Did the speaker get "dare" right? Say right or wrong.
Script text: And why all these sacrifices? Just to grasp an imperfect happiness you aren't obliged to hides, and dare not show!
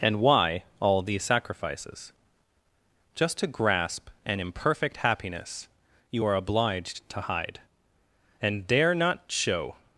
right